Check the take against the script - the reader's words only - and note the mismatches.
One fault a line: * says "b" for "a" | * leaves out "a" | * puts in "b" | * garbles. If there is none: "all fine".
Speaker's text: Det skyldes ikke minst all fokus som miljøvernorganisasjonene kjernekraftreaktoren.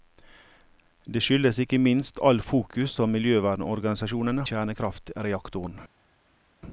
all fine